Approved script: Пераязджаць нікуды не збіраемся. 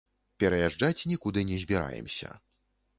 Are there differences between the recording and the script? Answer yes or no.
no